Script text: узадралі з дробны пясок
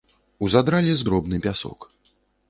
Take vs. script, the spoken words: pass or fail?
pass